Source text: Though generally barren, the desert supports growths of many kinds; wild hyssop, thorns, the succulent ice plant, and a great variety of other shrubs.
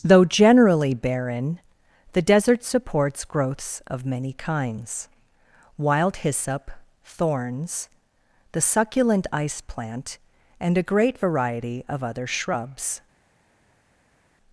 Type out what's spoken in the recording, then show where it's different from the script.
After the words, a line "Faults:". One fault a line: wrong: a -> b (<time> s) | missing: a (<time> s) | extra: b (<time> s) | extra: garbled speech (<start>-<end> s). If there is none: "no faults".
Though generally barren, the desert supports growths of many kinds; wild hyssop, thorns, the succulent ice plant, and a great variety of other shrubs.
Faults:
no faults